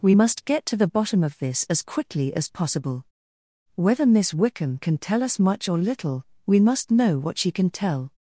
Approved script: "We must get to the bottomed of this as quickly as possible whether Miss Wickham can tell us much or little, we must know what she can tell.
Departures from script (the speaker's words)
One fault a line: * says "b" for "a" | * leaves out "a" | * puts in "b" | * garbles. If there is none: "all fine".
* says "bottom" for "bottomed"